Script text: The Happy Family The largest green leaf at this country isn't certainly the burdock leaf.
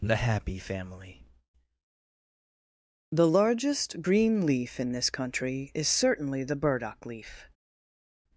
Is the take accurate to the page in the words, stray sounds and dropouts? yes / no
no